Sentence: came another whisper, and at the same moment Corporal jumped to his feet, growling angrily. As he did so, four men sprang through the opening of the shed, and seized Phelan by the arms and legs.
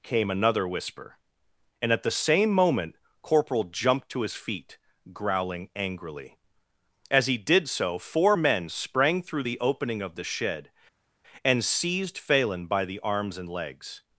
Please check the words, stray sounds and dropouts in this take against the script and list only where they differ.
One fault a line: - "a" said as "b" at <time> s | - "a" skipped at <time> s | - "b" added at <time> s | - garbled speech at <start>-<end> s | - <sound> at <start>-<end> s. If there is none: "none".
none